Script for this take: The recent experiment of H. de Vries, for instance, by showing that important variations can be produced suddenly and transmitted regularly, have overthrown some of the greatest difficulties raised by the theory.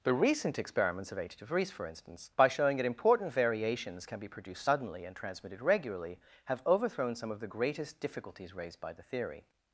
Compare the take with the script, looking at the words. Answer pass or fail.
fail